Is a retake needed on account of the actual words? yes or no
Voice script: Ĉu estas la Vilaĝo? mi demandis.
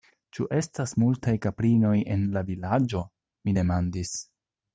yes